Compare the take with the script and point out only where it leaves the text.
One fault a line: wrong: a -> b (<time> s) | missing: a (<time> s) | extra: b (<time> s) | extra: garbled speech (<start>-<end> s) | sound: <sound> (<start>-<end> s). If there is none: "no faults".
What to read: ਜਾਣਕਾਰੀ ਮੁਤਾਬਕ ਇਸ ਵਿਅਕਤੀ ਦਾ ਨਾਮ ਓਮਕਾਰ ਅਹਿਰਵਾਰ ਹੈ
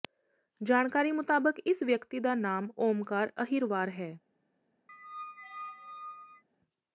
sound: squeak (4.9-6.4 s)